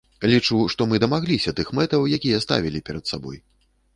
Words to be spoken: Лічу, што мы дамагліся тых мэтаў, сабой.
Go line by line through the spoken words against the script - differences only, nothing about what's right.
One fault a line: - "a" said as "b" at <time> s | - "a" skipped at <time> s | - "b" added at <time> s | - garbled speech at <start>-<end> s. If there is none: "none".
- "якія ставілі перад" added at 2.2 s